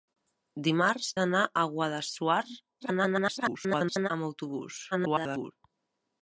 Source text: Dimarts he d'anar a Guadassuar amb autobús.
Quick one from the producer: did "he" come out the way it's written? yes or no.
no